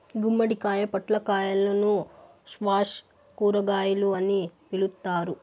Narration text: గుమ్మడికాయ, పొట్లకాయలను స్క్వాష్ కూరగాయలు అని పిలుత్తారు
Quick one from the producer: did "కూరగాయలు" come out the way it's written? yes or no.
yes